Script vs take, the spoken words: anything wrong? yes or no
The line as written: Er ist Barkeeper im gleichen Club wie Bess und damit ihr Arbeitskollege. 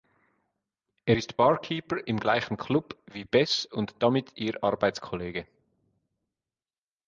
no